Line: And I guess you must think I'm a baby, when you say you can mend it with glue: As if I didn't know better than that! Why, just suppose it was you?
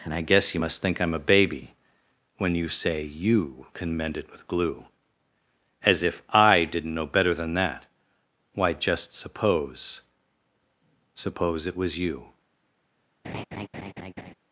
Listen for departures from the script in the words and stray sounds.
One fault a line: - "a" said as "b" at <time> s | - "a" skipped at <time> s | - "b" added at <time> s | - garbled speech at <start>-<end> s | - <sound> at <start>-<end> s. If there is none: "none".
- "suppose" added at 11.1 s
- laugh at 13.2-14.3 s